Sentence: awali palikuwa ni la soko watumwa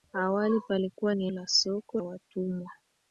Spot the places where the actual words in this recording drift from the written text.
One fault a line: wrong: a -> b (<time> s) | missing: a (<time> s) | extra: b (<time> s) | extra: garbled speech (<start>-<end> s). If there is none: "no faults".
no faults